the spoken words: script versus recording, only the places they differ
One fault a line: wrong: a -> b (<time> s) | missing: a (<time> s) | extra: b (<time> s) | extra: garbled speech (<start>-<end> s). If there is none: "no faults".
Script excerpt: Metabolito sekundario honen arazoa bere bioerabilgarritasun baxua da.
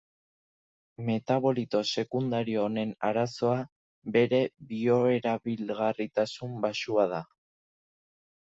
no faults